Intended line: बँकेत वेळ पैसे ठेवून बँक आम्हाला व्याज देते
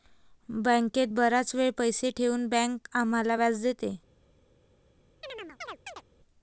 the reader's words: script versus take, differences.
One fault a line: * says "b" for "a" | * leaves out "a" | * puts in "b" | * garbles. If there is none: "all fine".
* puts in "बराच"